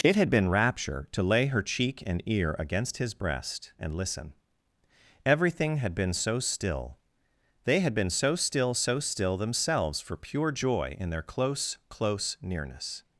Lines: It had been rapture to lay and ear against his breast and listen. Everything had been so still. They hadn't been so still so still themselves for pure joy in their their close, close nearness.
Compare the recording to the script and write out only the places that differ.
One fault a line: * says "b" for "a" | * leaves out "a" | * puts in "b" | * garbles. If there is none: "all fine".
* puts in "her cheek"
* says "had" for "hadn't"
* leaves out "their"